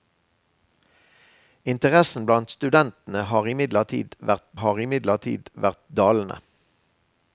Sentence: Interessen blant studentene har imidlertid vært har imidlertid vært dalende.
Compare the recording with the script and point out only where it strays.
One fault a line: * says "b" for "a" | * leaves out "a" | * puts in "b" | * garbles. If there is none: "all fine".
all fine